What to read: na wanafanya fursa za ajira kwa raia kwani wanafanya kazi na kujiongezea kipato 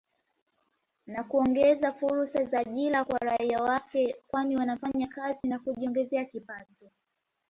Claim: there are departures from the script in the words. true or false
true